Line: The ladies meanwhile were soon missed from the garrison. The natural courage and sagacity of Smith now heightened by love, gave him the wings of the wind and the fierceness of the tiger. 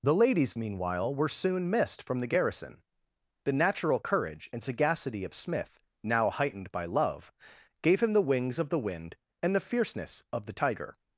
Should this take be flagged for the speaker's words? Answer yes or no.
no